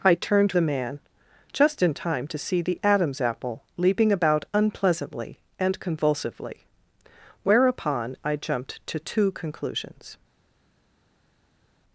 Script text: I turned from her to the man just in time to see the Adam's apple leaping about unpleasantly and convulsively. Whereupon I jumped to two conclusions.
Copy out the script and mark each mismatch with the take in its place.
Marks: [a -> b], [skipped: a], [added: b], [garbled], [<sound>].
I turned [skipped: from her to] the man just in time to see the Adam's apple leaping about unpleasantly and convulsively. Whereupon I jumped to two conclusions.